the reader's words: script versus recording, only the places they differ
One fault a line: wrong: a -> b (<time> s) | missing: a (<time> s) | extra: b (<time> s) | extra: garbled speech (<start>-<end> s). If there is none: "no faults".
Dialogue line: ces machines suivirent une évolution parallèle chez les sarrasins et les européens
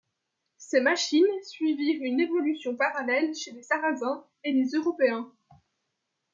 no faults